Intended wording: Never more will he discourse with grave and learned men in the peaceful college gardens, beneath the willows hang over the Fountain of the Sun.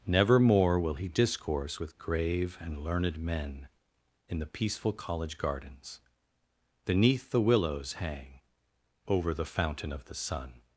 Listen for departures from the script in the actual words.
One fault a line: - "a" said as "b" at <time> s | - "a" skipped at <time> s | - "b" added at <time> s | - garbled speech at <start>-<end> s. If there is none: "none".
none